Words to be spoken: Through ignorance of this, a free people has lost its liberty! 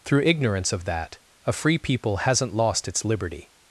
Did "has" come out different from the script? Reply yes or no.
yes